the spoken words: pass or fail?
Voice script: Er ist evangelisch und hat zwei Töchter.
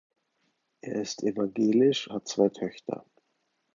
fail